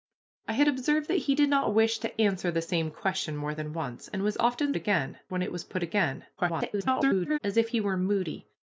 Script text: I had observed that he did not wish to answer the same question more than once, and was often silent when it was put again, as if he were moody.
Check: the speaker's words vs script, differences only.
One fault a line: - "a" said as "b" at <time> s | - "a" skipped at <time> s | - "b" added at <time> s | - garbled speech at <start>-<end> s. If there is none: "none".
- "silent" said as "again" at 4.8 s
- garbled speech at 6.4-7.4 s